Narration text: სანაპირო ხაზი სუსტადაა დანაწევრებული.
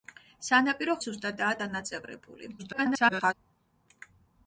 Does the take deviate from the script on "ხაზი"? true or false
true